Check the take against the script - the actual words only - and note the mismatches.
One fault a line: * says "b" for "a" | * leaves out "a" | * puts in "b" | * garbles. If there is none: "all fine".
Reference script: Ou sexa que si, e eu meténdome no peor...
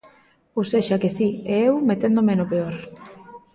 all fine